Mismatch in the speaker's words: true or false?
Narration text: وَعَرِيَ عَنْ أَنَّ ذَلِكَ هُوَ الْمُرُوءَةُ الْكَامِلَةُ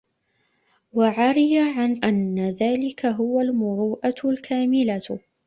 false